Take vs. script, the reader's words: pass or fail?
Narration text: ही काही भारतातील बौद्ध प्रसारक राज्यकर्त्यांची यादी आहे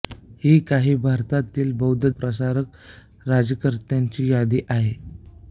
pass